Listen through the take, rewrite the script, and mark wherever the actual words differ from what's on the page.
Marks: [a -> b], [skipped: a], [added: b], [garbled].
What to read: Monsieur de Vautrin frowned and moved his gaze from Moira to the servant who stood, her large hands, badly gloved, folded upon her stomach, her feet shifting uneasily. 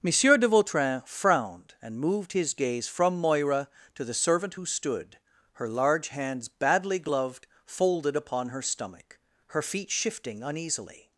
Monsieur de Vautrin frowned and moved his gaze from Moira to the servant who stood, her large hands, badly gloved, folded upon her stomach, her feet shifting uneasily.